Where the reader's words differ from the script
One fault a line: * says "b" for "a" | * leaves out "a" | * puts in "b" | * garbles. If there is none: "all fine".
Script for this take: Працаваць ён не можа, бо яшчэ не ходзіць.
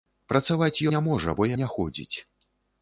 * leaves out "ён"
* leaves out "яшчэ"